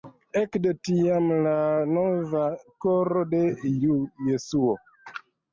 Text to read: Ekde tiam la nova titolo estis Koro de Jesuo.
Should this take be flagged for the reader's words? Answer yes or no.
yes